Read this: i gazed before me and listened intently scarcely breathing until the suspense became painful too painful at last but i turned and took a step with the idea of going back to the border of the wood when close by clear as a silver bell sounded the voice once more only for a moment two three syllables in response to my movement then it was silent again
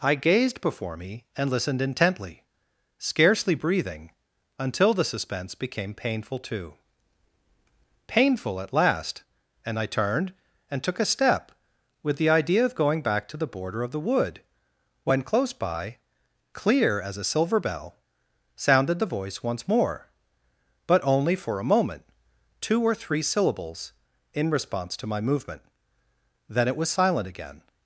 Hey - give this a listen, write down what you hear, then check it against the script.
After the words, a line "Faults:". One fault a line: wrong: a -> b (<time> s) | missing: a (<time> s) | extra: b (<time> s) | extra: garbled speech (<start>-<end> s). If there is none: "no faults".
i gazed before me and listened intently scarcely breathing until the suspense became painful too painful at last and i turned and took a step with the idea of going back to the border of the wood when close by clear as a silver bell sounded the voice once more but only for a moment two or three syllables in response to my movement then it was silent again
Faults:
wrong: but -> and (9.7 s)
extra: but (20.9 s)
extra: or (22.8 s)